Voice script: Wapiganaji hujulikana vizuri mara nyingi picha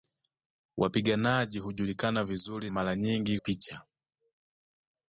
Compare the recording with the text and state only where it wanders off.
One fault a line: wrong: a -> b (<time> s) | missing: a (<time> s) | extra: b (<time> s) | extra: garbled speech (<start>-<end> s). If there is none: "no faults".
no faults